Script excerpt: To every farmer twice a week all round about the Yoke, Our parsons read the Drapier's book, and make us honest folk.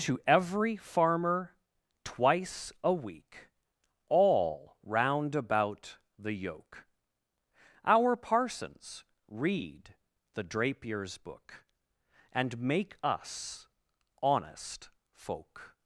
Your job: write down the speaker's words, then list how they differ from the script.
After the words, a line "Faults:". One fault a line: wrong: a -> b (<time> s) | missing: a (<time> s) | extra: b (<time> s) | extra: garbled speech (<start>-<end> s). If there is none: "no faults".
To every farmer twice a week all round about the Yoke, Our parsons read the Drapier's book, and make us honest folk.
Faults:
no faults